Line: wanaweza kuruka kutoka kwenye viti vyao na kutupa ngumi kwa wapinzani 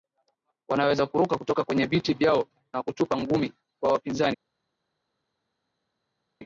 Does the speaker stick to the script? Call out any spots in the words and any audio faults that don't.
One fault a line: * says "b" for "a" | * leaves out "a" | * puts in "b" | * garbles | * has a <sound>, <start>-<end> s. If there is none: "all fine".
all fine